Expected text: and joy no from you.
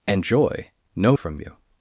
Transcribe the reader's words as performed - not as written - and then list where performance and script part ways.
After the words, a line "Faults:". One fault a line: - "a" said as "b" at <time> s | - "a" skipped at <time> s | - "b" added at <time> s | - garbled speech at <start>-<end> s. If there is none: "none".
and joy no from you.
Faults:
none